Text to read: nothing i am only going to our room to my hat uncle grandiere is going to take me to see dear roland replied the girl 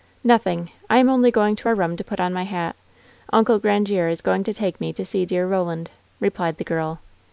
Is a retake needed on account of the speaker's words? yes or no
yes